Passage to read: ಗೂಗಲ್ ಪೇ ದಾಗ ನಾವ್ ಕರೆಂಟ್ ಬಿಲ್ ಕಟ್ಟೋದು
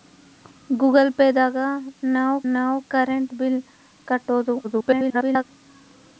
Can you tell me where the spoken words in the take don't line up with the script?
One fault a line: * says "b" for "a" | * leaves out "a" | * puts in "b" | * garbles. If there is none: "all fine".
* puts in "ನಾವ್"
* garbles